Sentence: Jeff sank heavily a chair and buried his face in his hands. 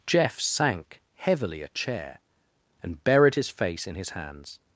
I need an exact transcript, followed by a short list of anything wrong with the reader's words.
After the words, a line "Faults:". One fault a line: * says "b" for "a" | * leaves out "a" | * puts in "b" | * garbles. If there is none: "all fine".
Jeff sank heavily a chair and buried his face in his hands.
Faults:
all fine